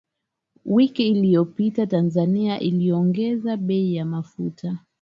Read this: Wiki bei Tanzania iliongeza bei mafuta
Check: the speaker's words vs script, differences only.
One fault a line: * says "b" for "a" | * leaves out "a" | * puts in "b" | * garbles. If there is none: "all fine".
* says "iliyopita" for "bei"
* puts in "ya"